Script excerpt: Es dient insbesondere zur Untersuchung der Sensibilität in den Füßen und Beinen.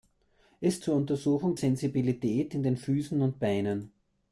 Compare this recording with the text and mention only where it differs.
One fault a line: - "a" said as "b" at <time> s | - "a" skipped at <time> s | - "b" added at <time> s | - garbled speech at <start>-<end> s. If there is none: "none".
- "dient insbesondere" skipped at 0.8 s
- "der" skipped at 1.6 s